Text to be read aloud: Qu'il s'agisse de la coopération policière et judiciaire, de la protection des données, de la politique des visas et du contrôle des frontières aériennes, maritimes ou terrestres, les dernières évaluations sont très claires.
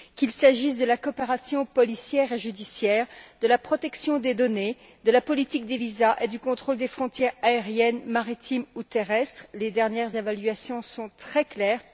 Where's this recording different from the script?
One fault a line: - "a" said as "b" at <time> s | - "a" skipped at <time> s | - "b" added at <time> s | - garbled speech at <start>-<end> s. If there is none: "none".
none